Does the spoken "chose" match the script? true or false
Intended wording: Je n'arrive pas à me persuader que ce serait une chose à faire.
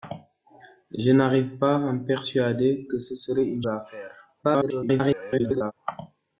false